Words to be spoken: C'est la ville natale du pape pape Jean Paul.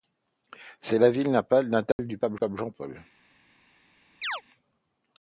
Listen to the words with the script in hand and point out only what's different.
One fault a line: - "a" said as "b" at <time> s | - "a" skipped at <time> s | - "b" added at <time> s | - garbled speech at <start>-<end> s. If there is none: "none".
none